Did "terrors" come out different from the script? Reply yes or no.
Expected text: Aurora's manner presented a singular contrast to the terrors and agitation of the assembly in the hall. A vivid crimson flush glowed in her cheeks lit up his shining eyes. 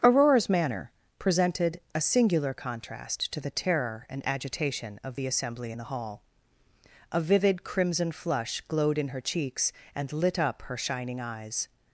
yes